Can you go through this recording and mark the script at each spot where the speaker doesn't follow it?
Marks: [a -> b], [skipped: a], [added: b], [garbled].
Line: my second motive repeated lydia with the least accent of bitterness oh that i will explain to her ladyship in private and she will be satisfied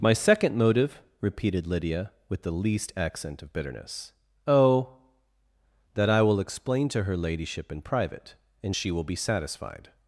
my second motive repeated lydia with the least accent of bitterness oh that i will explain to her ladyship in private and she will be satisfied